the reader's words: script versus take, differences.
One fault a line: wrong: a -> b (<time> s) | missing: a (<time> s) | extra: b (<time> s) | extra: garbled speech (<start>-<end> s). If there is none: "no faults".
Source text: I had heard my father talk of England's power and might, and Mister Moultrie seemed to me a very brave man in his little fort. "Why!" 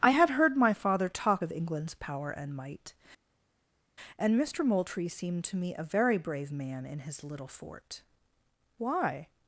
no faults